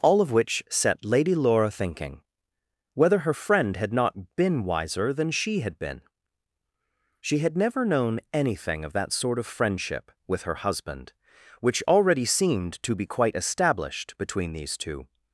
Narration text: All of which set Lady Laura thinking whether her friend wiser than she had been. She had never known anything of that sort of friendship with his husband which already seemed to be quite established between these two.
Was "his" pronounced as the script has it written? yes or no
no